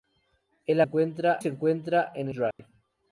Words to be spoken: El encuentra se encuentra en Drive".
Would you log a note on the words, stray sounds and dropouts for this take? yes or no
yes